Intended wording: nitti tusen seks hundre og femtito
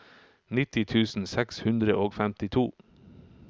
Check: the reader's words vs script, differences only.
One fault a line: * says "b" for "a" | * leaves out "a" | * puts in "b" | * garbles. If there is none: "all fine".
all fine